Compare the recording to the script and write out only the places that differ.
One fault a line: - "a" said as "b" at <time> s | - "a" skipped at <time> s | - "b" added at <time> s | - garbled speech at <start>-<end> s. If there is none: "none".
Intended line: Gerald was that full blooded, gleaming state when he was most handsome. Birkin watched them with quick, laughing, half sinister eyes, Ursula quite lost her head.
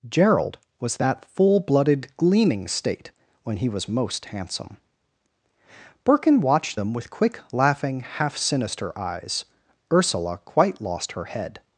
none